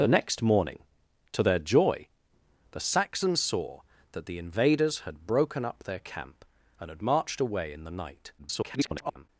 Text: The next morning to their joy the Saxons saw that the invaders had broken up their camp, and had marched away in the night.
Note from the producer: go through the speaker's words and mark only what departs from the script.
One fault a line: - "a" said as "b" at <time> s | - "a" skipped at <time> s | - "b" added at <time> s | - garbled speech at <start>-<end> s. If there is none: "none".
- garbled speech at 8.4-9.3 s